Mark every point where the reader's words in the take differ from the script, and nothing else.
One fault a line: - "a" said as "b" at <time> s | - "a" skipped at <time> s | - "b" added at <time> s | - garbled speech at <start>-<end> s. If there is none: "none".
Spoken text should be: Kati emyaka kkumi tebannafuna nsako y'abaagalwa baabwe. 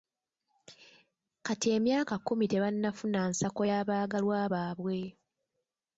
none